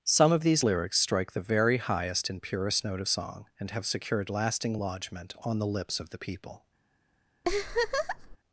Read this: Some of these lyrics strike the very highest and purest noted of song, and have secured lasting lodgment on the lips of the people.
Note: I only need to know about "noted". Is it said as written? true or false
false